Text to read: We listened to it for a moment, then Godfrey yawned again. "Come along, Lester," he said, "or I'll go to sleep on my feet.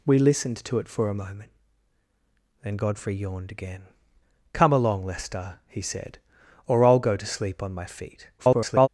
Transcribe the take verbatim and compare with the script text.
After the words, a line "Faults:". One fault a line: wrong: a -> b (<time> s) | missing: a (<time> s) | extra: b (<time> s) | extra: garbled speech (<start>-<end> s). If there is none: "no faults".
We listened to it for a moment, then Godfrey yawned again. "Come along, Lester," he said, "or I'll go to sleep on my feet. [garbled]
Faults:
extra: garbled speech (8.4-8.9 s)